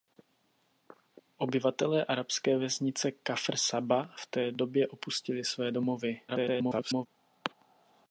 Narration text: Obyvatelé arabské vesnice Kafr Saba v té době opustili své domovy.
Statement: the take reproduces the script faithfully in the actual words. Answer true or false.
false